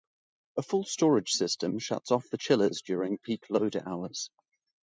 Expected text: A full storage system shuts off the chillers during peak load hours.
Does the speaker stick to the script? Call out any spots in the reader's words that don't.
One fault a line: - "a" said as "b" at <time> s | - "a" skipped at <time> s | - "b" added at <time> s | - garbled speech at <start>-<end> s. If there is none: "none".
none